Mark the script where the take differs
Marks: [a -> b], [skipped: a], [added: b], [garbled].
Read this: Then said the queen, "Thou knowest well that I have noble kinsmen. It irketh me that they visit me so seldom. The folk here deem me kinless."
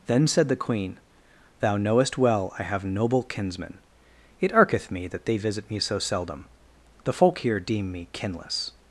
Then said the queen, "Thou knowest well [skipped: that] I have noble kinsmen. It irketh me that they visit me so seldom. The folk here deem me kinless."